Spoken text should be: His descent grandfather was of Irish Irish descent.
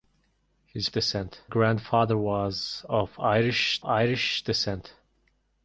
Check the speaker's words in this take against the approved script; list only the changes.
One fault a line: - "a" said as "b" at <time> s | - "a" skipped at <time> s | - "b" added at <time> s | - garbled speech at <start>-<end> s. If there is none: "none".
none